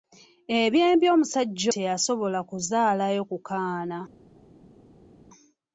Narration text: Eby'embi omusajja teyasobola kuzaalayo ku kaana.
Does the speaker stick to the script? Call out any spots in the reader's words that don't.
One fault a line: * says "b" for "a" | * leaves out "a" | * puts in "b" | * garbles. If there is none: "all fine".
all fine